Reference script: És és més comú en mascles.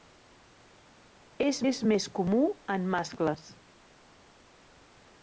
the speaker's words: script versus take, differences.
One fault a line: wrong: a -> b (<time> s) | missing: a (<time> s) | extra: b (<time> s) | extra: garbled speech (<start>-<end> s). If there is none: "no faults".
no faults